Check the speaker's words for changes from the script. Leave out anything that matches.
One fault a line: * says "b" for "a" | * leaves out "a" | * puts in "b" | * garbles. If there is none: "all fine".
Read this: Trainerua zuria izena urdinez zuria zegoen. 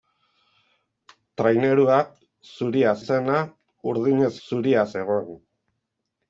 all fine